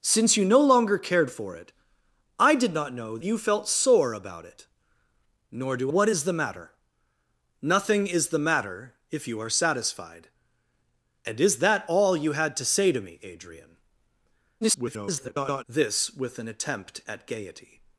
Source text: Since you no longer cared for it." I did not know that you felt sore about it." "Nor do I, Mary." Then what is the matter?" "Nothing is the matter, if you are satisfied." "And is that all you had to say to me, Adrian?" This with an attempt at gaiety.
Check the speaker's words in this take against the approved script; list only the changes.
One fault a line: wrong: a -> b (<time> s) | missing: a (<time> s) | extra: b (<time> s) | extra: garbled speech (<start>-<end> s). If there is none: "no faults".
missing: that (3.2 s)
missing: I Mary Then (5.9 s)
extra: garbled speech (14.6-15.6 s)